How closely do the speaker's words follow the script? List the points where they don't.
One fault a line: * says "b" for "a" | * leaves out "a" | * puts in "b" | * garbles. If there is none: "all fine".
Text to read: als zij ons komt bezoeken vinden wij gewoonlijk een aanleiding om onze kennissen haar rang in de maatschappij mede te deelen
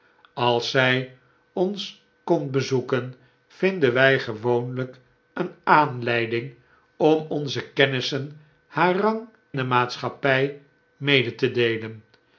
* leaves out "in"